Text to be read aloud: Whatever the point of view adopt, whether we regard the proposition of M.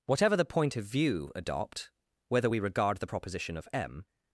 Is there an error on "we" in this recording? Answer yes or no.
no